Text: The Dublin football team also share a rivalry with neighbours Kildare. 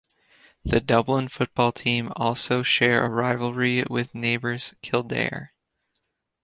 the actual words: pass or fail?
pass